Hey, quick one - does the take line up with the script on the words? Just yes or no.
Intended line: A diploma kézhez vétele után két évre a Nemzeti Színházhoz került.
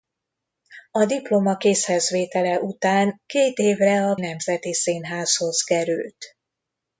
yes